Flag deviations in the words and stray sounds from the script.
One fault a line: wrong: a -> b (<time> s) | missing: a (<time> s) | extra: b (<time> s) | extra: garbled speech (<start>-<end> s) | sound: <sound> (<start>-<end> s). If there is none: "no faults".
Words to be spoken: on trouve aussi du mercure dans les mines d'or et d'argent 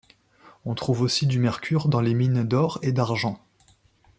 no faults